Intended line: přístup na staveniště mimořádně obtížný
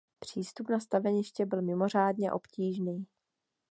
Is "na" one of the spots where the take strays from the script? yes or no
no